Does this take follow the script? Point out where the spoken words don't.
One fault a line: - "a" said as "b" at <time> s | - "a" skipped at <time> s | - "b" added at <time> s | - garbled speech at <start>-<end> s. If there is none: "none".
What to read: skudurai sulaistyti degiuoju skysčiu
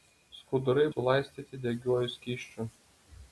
none